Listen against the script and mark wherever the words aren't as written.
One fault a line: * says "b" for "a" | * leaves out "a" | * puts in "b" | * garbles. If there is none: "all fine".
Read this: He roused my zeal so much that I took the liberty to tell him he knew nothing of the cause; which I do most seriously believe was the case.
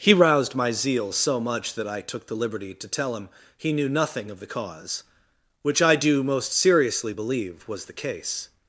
all fine